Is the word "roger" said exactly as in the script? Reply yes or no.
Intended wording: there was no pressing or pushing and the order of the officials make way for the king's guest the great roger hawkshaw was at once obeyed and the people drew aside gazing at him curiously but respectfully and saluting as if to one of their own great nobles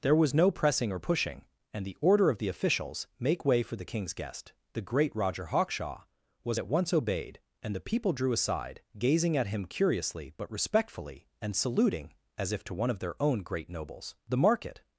yes